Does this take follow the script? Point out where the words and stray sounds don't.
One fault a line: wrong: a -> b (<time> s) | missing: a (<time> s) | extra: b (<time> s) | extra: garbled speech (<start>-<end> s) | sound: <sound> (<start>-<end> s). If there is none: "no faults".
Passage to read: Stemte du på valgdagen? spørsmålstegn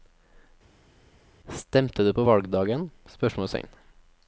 no faults